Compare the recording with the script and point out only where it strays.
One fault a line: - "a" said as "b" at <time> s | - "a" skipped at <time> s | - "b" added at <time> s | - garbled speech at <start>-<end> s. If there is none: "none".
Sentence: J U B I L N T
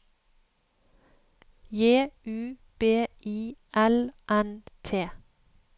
none